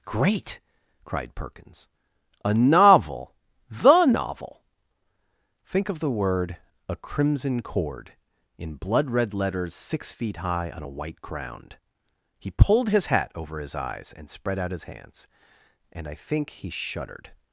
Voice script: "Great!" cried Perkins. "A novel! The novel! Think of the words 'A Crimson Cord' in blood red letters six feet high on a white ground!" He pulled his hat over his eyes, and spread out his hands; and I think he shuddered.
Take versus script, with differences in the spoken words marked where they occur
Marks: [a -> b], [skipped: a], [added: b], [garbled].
"Great!" cried Perkins. "A novel! The novel! Think of the [words -> word] 'A Crimson Cord' in blood red letters six feet high on a white ground!" He pulled his hat over his eyes, and spread out his hands; and I think he shuddered.